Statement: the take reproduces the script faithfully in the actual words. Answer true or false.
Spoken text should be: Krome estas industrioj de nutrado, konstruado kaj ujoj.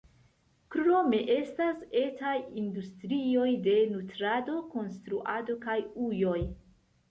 false